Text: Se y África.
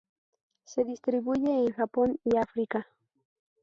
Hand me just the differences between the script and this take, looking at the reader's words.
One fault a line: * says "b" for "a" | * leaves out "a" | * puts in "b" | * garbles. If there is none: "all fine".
* puts in "distribuye en Japón"